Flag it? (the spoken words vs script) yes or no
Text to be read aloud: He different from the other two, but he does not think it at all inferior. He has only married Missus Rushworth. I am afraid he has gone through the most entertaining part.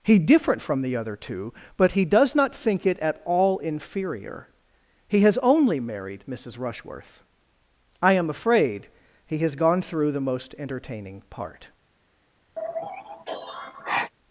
no